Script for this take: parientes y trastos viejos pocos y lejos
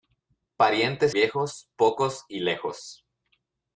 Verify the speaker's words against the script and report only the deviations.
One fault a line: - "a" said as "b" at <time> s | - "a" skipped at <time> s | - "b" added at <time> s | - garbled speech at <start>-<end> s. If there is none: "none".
- "y trastos" skipped at 1.1 s